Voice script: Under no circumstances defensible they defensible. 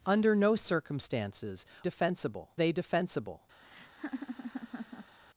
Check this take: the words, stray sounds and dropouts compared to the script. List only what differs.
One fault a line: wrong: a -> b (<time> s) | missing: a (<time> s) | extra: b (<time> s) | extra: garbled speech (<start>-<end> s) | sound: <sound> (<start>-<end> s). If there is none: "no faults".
sound: laugh (3.6-5.2 s)